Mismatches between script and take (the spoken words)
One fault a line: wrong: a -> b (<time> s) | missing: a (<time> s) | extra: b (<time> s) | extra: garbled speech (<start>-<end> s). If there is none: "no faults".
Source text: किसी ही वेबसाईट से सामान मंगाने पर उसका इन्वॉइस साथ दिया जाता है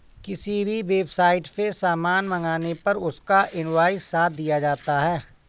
wrong: ही -> भी (0.7 s)